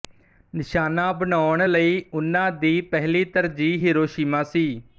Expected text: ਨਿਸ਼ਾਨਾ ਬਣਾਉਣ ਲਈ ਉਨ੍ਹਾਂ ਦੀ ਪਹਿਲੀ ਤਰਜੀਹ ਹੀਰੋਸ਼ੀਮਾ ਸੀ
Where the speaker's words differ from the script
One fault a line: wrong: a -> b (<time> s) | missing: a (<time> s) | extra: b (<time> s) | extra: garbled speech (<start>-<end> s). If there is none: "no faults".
no faults